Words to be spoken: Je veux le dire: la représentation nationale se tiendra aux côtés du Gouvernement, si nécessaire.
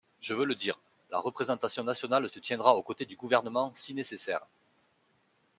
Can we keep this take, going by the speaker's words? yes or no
yes